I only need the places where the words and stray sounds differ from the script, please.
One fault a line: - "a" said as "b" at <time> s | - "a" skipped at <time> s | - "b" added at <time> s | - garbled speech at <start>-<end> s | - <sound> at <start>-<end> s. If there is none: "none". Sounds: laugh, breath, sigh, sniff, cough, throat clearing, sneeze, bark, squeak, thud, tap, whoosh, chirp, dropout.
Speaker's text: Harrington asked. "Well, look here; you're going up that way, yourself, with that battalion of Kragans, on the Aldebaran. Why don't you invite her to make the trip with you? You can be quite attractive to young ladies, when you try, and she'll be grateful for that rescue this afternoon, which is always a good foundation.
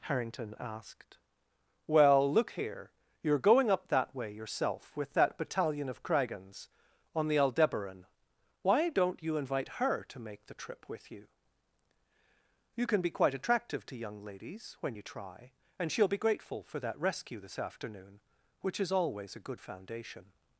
none